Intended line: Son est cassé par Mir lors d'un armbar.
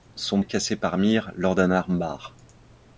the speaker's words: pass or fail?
pass